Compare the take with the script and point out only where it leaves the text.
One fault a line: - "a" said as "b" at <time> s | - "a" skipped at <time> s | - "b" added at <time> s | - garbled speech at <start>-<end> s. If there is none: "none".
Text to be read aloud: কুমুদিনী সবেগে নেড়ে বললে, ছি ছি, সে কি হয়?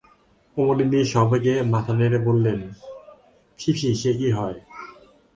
- "মাথা" added at 1.7 s